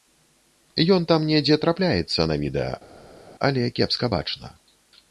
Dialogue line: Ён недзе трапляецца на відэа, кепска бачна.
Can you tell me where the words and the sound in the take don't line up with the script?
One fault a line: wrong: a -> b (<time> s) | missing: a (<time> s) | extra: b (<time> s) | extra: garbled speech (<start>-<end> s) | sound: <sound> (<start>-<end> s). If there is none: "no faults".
extra: там (1.1 s)
extra: але (3.5 s)